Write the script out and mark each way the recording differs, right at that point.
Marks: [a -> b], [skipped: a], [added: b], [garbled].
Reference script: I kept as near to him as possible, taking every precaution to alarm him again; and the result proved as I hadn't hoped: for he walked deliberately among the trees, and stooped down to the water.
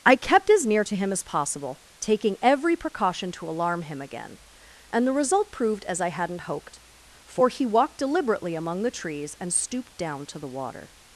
I kept as near to him as possible, taking every precaution to alarm him again; and the result proved as I hadn't hoped: for he walked deliberately among the trees, and stooped down to the water.